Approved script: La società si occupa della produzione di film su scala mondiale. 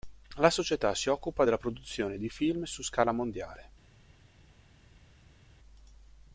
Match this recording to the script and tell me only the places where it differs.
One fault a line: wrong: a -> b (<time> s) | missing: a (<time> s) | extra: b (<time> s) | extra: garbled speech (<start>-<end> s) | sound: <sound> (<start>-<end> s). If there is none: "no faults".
no faults